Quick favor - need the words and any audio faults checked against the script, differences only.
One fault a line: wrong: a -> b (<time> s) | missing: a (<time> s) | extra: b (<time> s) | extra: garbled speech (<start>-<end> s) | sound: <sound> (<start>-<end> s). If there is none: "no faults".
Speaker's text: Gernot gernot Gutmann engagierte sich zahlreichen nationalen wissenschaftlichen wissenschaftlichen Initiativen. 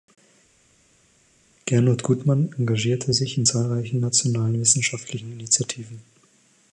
missing: gernot (2.0 s)
extra: in (3.4 s)
missing: wissenschaftlichen (5.3 s)